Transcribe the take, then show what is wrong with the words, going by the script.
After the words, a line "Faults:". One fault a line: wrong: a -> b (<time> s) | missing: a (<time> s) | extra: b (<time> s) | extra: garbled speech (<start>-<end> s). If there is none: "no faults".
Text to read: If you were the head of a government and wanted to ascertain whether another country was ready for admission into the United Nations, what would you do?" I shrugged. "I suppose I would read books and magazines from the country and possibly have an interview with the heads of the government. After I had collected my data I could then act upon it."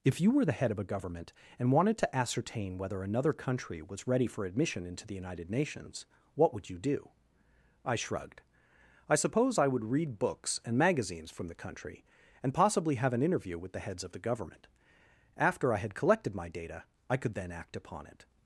If you were the head of a government and wanted to ascertain whether another country was ready for admission into the United Nations, what would you do?" I shrugged. "I suppose I would read books and magazines from the country and possibly have an interview with the heads of the government. After I had collected my data I could then act upon it."
Faults:
no faults